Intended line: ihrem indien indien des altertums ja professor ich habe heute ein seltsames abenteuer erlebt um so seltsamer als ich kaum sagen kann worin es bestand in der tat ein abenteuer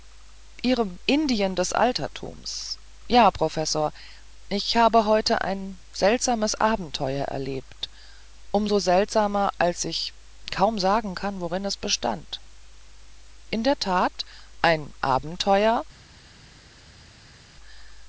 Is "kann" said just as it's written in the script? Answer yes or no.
yes